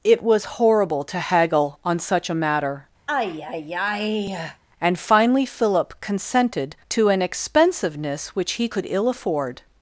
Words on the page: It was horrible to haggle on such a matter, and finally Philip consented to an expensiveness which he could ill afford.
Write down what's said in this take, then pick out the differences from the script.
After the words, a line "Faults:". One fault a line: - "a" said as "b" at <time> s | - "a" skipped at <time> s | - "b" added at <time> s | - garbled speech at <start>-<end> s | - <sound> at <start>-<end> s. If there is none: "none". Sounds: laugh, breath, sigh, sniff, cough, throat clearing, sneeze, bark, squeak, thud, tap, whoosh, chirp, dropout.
It was horrible to haggle on such a matter, and finally Philip consented to an expensiveness which he could ill afford.
Faults:
- sigh at 3.1-4.6 s